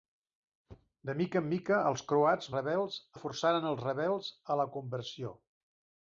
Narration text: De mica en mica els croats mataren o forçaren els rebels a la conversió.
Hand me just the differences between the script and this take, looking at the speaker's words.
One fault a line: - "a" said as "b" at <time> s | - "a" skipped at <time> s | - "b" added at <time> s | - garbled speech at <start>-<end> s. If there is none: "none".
- "mataren" said as "rebels" at 2.5 s